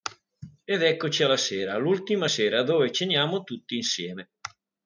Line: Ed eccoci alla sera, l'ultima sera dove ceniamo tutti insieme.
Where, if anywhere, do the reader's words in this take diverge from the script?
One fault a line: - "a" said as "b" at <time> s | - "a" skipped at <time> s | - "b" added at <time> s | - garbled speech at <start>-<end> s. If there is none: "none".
none